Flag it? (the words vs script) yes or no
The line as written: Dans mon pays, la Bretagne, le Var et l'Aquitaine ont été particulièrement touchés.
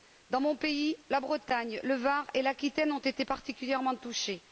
no